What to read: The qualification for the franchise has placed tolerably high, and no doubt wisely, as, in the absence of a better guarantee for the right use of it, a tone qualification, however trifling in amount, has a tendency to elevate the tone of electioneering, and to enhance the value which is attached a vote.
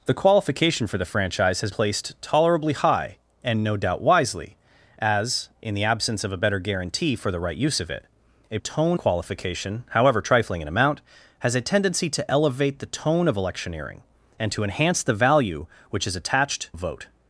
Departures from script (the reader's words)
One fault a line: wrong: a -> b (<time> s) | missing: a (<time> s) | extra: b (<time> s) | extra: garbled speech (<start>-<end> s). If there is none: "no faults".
no faults